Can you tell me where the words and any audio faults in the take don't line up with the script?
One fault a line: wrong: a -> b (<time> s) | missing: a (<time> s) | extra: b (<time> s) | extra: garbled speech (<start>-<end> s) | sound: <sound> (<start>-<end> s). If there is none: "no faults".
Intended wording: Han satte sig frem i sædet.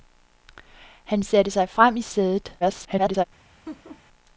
extra: garbled speech (2.6-3.2 s)
sound: laugh (3.7-4.0 s)